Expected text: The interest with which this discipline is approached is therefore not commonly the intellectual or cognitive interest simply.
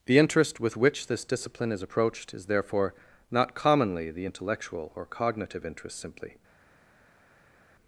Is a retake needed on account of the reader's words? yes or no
no